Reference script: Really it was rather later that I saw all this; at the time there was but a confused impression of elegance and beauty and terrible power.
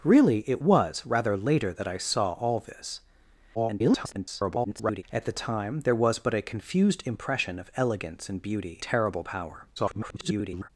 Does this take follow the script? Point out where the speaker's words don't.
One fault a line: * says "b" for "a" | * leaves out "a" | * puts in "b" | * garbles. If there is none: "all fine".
* garbles
* leaves out "and"
* garbles